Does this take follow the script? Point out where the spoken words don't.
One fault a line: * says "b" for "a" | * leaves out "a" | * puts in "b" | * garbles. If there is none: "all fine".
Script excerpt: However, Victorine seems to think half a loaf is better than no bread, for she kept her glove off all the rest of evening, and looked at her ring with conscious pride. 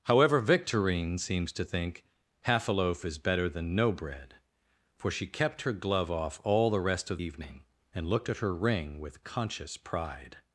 all fine